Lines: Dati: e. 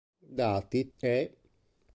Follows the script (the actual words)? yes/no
yes